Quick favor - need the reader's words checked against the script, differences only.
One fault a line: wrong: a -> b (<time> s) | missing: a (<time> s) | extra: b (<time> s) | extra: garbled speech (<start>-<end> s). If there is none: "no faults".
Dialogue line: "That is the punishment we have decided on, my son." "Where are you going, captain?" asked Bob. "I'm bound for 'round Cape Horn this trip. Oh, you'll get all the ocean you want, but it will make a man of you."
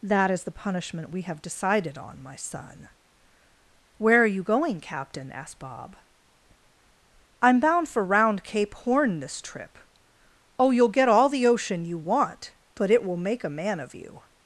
no faults